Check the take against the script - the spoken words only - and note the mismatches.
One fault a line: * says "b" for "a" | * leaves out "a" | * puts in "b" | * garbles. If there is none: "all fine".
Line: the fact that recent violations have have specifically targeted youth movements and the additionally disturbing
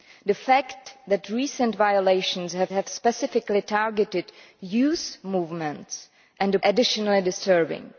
all fine